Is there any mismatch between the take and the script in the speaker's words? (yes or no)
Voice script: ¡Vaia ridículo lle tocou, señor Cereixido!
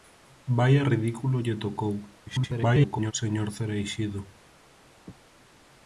yes